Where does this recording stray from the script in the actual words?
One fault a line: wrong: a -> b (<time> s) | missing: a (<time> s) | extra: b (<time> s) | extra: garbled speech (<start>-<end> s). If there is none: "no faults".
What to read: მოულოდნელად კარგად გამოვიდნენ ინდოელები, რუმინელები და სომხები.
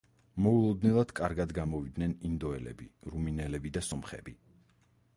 no faults